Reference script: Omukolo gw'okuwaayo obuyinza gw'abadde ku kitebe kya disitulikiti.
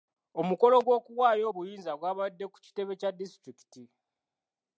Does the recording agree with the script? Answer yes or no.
yes